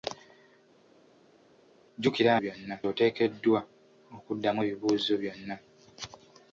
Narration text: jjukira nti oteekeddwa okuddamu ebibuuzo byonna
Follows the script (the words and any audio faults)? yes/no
no